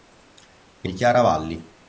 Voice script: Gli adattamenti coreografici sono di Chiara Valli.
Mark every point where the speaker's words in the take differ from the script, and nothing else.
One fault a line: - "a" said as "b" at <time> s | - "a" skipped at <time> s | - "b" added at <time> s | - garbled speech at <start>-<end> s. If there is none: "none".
- "adattamenti coreografici sono" skipped at 0.9 s